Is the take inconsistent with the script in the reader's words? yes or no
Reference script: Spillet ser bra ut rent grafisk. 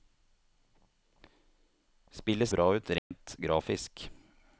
yes